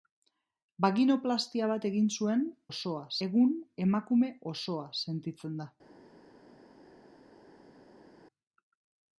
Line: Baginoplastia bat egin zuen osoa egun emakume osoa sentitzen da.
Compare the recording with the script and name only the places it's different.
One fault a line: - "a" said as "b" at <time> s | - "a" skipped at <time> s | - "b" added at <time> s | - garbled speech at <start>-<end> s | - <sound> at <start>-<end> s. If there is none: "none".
none